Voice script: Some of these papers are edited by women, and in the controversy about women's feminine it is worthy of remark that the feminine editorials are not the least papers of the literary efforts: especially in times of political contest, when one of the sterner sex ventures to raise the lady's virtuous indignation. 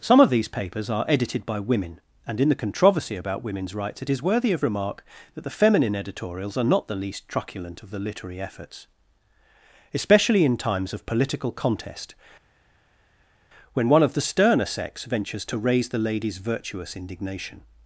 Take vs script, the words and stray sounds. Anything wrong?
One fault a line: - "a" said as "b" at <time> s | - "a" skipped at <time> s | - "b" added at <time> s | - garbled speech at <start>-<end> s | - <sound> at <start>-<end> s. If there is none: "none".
- "feminine" said as "rights" at 3.8 s
- "papers" said as "truculent" at 7.3 s